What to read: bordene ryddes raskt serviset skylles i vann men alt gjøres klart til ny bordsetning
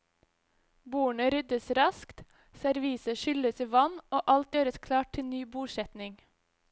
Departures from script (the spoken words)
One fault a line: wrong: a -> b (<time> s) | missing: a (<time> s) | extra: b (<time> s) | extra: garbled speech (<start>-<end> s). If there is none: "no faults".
wrong: men -> og (4.2 s)